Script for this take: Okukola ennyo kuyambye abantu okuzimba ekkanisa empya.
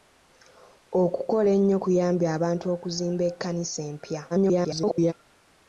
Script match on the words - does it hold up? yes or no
no